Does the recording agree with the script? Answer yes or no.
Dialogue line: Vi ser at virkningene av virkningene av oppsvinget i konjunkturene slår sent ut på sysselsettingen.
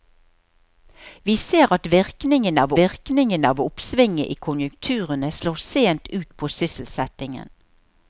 yes